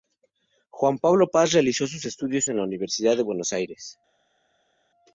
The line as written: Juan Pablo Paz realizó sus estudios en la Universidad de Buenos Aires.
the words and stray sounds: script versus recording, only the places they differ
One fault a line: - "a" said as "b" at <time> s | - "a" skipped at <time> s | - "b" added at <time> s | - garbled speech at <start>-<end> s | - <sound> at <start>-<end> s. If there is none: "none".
none